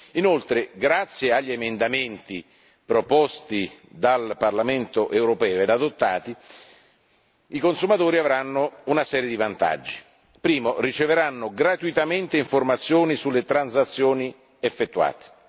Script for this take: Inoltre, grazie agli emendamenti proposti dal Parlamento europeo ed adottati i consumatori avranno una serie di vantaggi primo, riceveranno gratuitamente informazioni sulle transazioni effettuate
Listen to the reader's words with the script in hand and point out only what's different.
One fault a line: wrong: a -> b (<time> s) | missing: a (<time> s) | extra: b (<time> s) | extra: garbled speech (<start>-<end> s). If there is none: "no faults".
no faults